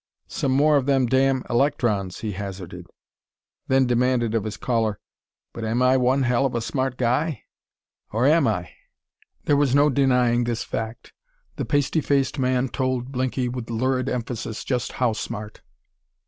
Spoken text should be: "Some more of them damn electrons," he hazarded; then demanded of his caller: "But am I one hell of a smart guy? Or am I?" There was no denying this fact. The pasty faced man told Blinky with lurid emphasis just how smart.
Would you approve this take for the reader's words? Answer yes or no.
yes